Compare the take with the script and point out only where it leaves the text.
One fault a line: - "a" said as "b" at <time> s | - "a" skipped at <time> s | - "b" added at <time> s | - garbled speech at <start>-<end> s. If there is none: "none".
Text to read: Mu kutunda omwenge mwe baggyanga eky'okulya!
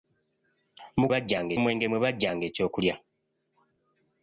- "kutunda" said as "baggyanga" at 1.1 s